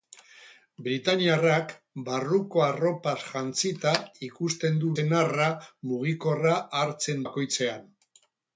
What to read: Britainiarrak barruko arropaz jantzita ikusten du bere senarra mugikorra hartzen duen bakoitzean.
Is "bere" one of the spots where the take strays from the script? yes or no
yes